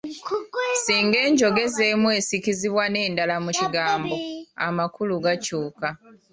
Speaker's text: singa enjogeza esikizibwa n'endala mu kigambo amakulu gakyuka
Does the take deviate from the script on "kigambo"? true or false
false